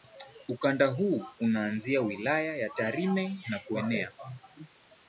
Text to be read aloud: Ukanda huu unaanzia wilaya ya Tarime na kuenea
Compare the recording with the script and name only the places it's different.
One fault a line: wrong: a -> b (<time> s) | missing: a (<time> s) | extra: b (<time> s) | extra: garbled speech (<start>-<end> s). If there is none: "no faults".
no faults